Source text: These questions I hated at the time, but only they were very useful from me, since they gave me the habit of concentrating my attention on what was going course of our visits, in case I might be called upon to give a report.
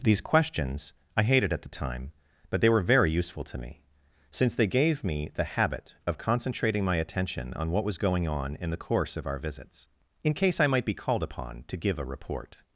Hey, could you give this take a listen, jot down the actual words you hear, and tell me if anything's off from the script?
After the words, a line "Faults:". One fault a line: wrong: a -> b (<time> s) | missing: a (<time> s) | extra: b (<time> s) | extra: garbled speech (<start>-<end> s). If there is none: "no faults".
These questions I hated at the time, but they were very useful to me, since they gave me the habit of concentrating my attention on what was going on in the course of our visits, in case I might be called upon to give a report.
Faults:
missing: only (2.6 s)
wrong: from -> to (3.4 s)
extra: on in the (8.3 s)